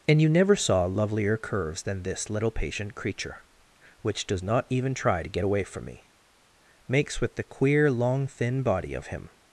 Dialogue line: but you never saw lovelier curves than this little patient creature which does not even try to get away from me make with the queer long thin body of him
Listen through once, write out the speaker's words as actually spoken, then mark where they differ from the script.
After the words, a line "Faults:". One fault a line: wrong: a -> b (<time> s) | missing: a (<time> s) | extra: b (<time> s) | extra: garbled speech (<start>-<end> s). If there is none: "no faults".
and you never saw lovelier curves than this little patient creature which does not even try to get away from me makes with the queer long thin body of him
Faults:
wrong: but -> and (0.1 s)
wrong: make -> makes (6.9 s)